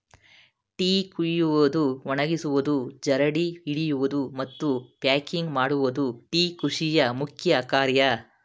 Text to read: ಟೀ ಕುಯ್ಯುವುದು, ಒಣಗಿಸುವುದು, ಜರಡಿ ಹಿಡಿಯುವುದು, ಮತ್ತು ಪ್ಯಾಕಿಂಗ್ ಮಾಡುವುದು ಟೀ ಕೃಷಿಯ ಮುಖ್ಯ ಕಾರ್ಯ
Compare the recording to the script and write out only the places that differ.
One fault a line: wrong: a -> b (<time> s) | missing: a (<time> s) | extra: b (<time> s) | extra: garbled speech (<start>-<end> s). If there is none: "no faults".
no faults